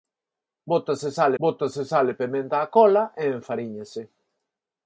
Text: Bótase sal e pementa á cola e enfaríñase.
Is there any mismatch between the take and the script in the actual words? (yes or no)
yes